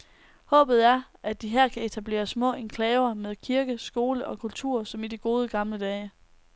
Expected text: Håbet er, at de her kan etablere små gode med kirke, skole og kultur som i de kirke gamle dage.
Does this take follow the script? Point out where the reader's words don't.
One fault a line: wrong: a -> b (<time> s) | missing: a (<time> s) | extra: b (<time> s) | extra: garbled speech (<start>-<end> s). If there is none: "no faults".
wrong: gode -> enklaver (2.5 s)
wrong: kirke -> gode (5.2 s)